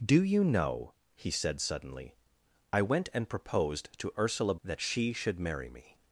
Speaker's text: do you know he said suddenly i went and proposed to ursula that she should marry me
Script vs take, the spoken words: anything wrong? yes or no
no